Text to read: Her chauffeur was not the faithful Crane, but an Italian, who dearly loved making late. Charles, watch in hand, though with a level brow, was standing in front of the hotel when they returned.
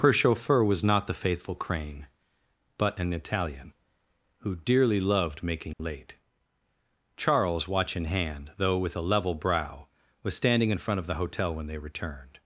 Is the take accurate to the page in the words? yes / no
yes